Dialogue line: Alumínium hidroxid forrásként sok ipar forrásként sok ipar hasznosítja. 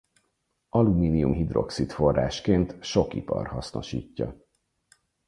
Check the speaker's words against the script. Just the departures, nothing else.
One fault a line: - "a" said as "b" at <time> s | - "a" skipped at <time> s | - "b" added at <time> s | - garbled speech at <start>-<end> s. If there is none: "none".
- "forrásként sok ipar" skipped at 3.5 s